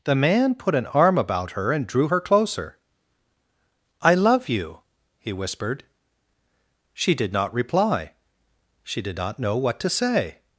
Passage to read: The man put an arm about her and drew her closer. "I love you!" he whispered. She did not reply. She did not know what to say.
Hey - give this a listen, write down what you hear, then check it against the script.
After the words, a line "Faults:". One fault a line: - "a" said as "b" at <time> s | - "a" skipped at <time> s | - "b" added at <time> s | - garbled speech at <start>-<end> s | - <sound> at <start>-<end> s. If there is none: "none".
The man put an arm about her and drew her closer. "I love you!" he whispered. She did not reply. She did not know what to say.
Faults:
none